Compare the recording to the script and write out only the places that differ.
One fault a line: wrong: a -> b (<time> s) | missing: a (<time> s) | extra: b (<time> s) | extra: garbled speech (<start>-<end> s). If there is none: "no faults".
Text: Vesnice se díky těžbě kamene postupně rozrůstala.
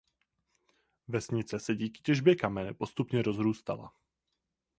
no faults